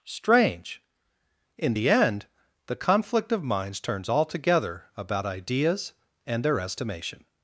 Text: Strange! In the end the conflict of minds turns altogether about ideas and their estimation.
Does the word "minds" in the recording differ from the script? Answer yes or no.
no